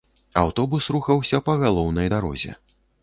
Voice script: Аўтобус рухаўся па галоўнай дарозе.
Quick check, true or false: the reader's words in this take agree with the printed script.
true